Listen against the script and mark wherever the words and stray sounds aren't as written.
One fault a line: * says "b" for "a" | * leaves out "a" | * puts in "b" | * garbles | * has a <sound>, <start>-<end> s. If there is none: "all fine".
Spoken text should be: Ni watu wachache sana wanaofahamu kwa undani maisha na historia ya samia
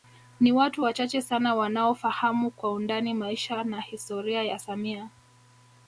all fine